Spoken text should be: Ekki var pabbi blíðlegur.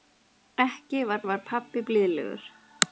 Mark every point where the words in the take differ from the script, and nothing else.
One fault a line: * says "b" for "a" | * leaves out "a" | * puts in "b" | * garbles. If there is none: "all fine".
* puts in "var"